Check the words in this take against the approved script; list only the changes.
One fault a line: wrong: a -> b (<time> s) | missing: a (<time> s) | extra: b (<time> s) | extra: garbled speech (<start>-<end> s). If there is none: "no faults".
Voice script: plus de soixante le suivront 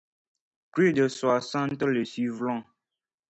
no faults